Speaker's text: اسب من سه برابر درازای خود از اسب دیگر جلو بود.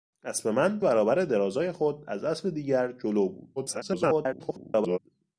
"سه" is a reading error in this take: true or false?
true